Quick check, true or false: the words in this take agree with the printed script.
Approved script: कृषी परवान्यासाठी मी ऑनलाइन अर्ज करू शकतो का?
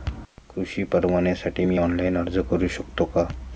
true